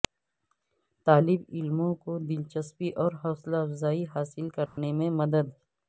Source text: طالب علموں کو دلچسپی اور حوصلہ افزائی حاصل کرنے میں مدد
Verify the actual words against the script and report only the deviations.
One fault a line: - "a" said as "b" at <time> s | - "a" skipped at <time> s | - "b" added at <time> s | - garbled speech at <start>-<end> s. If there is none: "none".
none